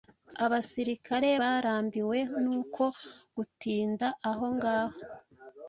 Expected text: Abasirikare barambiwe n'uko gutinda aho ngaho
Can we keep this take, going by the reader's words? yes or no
yes